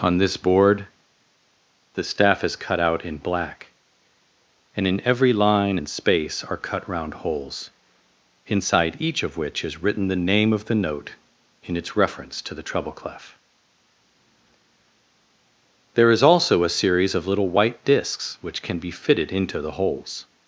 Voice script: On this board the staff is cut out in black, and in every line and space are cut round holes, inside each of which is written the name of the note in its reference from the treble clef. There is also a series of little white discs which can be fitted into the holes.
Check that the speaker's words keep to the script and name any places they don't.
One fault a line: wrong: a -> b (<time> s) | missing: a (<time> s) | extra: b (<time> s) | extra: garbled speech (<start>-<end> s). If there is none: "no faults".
wrong: from -> to (12.4 s)